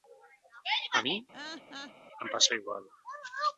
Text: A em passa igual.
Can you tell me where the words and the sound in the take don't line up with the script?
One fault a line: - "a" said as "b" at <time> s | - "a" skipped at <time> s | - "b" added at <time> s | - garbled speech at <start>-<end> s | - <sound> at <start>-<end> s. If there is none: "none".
- "mi" added at 1.0 s
- laugh at 1.3-1.9 s